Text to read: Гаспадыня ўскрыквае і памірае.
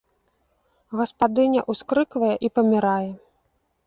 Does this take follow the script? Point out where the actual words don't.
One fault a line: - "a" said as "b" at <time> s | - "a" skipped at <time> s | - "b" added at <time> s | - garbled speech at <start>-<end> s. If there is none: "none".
none